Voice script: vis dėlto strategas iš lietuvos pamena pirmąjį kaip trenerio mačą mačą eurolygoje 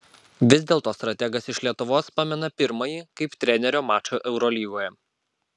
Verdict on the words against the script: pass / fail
fail